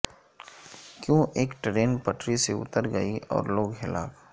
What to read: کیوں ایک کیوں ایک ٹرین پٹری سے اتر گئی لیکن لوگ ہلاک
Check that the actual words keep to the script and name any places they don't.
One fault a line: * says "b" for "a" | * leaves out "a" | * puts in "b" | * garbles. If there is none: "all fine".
* leaves out "کیوں ایک"
* says "اور" for "لیکن"